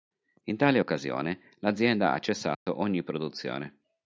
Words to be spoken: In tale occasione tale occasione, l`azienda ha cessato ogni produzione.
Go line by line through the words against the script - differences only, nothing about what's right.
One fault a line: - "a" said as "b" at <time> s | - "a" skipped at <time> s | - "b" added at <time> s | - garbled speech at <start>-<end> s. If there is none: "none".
- "tale occasione" skipped at 1.4 s